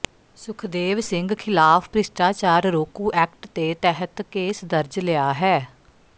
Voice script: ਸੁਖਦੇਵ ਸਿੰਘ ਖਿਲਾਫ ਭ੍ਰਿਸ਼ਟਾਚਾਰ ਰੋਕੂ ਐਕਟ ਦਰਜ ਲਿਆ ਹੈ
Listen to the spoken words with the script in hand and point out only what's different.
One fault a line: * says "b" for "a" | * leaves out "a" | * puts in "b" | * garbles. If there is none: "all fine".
* puts in "ਦੇ ਤਹਿਤ ਕੇਸ"